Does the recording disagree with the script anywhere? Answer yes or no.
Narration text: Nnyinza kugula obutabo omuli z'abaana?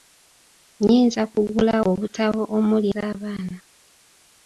no